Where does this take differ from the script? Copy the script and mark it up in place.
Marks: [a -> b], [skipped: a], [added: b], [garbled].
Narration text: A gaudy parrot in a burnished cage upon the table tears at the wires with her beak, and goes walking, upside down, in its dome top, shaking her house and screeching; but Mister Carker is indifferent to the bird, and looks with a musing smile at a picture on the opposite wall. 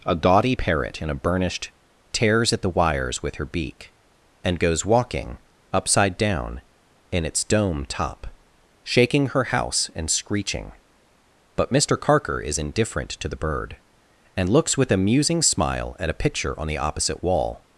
A gaudy parrot in a burnished [skipped: cage upon the table] tears at the wires with her beak, and goes walking, upside down, in its dome top, shaking her house and screeching; but Mister Carker is indifferent to the bird, and looks with a musing smile at a picture on the opposite wall.